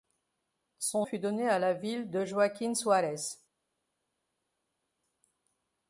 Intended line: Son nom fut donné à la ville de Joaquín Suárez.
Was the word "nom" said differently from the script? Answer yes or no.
yes